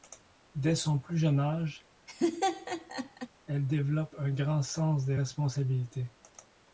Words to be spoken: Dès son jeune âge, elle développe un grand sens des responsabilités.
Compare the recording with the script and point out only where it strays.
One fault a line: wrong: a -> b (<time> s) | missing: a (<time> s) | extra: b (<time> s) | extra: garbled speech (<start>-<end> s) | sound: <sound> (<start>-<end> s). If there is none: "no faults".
extra: plus (1.0 s)
sound: laugh (2.1-3.3 s)